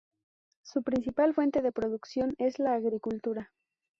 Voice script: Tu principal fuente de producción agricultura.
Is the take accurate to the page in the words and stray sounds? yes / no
no